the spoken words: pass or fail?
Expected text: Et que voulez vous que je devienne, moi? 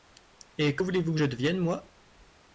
pass